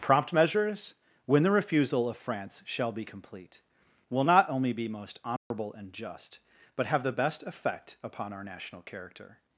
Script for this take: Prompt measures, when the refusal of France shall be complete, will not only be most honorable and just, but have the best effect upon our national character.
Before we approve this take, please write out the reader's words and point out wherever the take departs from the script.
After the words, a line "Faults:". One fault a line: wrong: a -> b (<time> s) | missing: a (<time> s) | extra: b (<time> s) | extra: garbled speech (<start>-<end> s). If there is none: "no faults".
Prompt measures, when the refusal of France shall be complete, will not only be most honorable and just, but have the best effect upon our national character.
Faults:
no faults